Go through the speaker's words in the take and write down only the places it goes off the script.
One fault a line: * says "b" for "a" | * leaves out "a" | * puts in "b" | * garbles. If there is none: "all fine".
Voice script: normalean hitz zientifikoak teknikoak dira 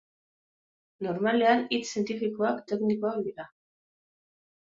all fine